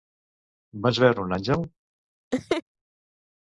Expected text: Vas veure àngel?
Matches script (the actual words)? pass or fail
fail